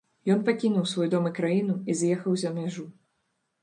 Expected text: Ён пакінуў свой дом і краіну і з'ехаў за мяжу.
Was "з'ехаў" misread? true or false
false